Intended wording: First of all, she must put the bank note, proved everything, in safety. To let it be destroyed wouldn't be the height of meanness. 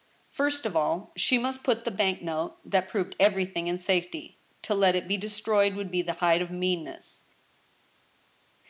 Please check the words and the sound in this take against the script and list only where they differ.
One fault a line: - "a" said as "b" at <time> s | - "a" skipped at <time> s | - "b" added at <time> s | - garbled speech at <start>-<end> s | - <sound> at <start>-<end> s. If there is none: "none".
- "that" added at 2.6 s
- "wouldn't" said as "would" at 5.8 s